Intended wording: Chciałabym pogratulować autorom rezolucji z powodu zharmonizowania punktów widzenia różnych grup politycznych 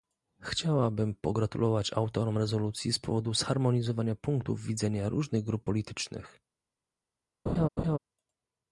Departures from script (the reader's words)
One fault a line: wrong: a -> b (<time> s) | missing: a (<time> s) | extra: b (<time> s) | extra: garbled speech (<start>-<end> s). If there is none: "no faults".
no faults